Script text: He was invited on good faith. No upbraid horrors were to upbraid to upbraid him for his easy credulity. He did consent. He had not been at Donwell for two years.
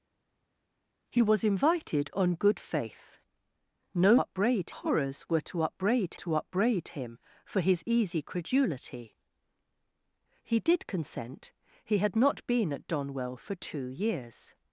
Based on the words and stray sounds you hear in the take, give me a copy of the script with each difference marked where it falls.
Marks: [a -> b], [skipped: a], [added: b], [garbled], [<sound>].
He was invited on good faith. No upbraid horrors were to upbraid to upbraid him for his easy credulity. He did consent. He had not been at Donwell for two years.